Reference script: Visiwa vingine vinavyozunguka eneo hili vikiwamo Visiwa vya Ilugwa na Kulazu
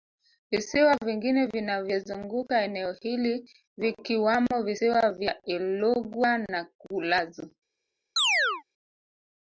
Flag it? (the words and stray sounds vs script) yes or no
yes